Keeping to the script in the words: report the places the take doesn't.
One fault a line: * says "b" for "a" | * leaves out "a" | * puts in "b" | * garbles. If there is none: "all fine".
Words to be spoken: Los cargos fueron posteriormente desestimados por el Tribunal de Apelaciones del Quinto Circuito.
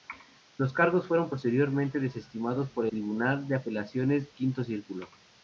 * leaves out "el"
* leaves out "del"